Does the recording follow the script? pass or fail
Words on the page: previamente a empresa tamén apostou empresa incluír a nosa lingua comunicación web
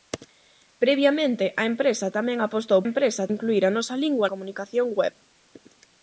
pass